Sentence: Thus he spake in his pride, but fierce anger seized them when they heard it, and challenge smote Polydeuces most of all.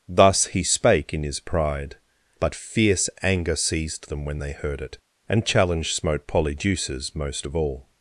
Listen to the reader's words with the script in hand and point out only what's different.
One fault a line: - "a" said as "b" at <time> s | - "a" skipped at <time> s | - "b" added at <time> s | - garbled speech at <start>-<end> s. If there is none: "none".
none